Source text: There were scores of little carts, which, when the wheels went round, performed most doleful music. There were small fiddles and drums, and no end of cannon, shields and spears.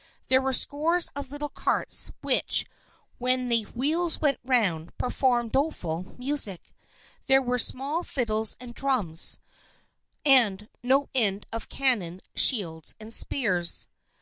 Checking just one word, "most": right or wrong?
wrong